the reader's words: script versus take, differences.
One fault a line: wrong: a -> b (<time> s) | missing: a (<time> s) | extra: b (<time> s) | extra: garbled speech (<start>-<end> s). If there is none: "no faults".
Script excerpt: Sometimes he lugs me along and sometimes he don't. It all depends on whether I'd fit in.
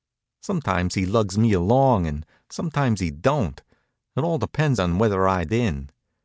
missing: fit (5.5 s)